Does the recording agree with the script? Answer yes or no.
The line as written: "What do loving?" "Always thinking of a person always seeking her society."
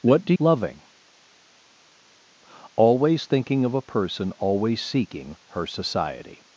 yes